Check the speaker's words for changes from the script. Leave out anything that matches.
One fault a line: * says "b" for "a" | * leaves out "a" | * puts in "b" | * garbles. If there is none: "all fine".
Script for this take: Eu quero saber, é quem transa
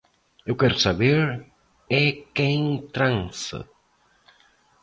all fine